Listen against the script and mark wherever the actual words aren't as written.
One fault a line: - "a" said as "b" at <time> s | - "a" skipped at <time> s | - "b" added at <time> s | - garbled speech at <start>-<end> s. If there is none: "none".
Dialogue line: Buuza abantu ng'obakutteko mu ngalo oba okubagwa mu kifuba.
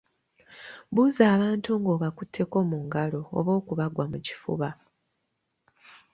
none